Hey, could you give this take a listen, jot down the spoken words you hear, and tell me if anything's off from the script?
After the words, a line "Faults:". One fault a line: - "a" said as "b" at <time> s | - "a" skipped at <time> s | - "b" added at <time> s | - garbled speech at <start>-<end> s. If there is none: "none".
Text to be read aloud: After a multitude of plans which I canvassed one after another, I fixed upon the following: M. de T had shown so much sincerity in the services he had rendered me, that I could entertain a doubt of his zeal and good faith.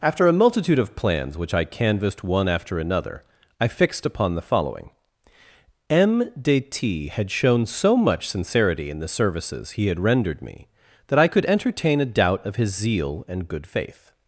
After a multitude of plans which I canvassed one after another, I fixed upon the following: M. de T had shown so much sincerity in the services he had rendered me, that I could entertain a doubt of his zeal and good faith.
Faults:
none